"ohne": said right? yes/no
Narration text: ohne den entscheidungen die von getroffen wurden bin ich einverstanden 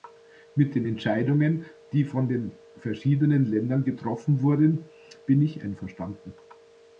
no